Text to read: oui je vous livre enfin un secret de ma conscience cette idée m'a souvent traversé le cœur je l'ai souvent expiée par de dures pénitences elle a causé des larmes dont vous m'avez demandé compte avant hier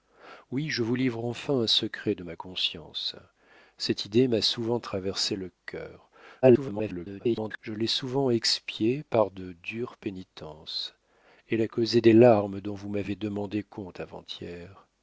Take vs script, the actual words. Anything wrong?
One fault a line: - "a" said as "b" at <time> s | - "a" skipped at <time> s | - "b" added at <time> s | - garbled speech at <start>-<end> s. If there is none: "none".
- garbled speech at 6.4-7.6 s